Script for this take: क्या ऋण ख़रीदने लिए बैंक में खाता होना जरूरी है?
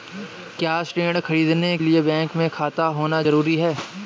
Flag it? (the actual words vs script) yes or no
no